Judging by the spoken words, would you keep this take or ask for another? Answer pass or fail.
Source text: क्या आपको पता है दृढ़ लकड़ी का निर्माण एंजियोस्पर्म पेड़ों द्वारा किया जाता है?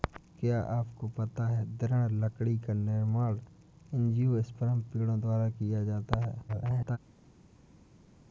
fail